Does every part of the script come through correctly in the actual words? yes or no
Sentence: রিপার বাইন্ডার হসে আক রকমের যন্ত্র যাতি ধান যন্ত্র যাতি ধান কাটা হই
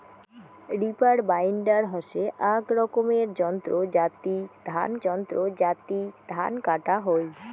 yes